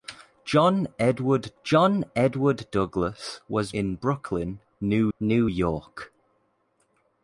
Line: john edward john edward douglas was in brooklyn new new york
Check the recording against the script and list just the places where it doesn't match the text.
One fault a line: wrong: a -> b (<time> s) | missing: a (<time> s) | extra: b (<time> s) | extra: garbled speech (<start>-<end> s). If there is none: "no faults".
no faults